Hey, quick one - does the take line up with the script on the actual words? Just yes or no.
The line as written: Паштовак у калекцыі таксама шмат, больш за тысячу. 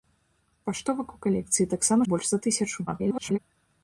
no